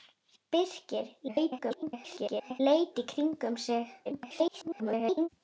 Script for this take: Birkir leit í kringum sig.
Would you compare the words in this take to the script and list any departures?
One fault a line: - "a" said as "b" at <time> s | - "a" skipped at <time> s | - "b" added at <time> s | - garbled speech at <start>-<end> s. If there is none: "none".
- garbled speech at 1.3-2.6 s
- garbled speech at 4.0-5.3 s